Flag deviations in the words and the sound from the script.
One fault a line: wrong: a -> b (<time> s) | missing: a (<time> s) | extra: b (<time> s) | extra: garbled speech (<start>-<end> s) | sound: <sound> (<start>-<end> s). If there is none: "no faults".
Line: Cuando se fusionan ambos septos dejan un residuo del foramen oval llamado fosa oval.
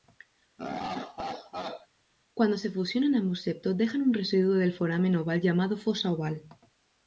sound: laugh (0.6-1.9 s)